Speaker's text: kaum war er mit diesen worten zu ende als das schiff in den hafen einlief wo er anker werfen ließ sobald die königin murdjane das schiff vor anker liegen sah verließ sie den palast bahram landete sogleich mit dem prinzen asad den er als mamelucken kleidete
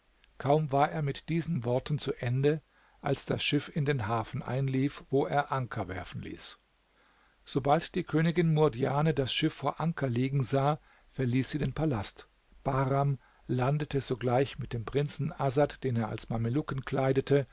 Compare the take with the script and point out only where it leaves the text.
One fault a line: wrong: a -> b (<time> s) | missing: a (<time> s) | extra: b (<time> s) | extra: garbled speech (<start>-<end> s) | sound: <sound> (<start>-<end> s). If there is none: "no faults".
no faults